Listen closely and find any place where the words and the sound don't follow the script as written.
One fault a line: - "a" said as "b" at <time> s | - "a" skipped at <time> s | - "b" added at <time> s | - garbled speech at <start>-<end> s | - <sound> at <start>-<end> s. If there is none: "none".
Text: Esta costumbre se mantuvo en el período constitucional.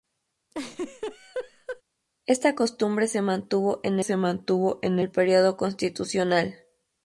- laugh at 0.5-1.8 s
- "se mantuvo en" added at 4.0 s